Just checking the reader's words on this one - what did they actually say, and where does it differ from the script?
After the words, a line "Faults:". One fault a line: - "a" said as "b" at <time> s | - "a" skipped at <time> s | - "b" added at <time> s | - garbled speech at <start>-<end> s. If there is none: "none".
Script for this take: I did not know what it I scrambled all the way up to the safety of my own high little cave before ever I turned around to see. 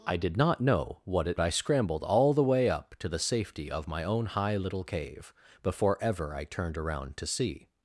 I did not know what it I scrambled all the way up to the safety of my own high little cave before ever I turned around to see.
Faults:
none